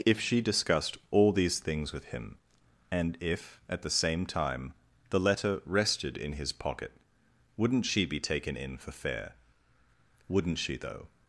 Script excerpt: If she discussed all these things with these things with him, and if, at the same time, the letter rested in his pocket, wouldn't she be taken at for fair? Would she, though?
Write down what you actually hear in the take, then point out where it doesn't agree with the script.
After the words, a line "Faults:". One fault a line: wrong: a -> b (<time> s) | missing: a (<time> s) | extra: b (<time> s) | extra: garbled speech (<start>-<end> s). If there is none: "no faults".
If she discussed all these things with him, and if, at the same time, the letter rested in his pocket, wouldn't she be taken in for fair? Wouldn't she, though?
Faults:
missing: these things with (2.0 s)
wrong: at -> in (8.6 s)
wrong: Would -> Wouldn't (10.3 s)